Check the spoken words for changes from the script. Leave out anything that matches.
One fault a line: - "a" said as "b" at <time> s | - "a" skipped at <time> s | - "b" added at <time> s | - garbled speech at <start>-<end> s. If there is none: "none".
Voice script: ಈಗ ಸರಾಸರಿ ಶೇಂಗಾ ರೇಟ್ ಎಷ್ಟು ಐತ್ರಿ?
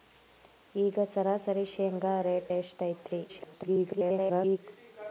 - garbled speech at 3.3-4.6 s